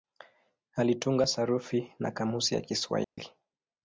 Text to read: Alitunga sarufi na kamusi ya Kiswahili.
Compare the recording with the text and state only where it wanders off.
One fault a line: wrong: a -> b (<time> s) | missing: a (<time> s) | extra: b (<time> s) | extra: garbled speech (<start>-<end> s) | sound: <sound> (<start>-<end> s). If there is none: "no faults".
sound: dropout (3.0-3.2 s)